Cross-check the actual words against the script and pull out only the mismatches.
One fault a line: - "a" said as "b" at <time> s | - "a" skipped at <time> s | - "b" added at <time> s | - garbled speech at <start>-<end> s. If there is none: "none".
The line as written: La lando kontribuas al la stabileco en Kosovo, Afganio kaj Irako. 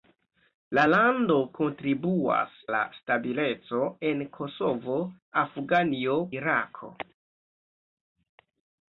- "al" skipped at 2.5 s
- "kaj" skipped at 6.2 s